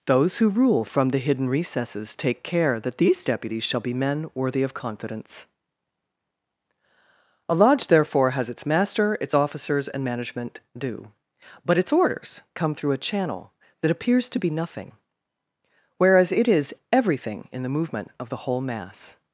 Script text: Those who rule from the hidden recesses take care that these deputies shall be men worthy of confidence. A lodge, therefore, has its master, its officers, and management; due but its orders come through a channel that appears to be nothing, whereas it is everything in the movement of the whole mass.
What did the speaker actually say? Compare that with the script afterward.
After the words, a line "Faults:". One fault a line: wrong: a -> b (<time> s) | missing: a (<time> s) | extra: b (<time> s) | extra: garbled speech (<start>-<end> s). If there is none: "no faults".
Those who rule from the hidden recesses take care that these deputies shall be men worthy of confidence. A lodge, therefore, has its master, its officers, and management; due but its orders come through a channel that appears to be nothing, whereas it is everything in the movement of the whole mass.
Faults:
no faults